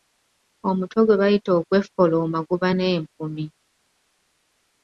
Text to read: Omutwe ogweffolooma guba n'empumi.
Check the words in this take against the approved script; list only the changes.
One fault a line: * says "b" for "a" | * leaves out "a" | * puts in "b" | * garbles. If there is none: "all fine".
* puts in "gwe bayita"